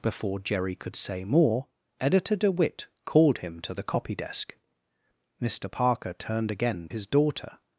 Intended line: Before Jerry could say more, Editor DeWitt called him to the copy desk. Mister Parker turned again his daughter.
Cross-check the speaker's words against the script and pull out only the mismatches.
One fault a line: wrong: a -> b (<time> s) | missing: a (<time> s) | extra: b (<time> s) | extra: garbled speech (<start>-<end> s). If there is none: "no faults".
no faults